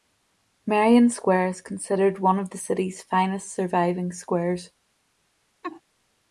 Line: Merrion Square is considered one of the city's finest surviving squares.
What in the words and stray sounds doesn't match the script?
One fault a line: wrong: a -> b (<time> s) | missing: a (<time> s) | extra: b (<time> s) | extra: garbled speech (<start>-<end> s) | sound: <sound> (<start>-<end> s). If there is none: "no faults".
sound: laugh (5.6-5.8 s)